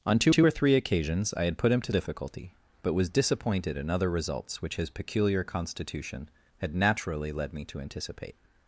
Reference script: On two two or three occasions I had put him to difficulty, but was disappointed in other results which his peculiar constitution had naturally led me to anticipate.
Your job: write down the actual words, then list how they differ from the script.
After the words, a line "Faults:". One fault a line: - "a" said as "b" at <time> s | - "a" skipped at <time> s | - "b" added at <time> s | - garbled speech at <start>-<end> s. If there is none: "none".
On two two or three occasions I had put him to difficulty, but was disappointed in other results which his peculiar constitution had naturally led me to anticipate.
Faults:
none